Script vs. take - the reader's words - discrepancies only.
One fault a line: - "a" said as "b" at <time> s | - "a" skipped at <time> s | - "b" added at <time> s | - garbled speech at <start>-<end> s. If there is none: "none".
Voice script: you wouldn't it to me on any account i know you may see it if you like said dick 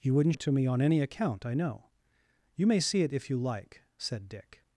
none